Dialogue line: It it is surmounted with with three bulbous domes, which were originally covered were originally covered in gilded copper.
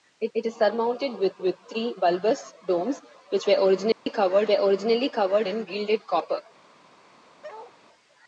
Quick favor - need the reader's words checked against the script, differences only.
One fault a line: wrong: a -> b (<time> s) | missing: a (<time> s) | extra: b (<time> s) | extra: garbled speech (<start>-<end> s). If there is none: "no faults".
no faults